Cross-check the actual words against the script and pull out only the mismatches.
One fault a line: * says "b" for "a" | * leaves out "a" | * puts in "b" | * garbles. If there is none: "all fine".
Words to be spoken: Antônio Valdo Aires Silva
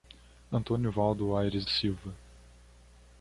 all fine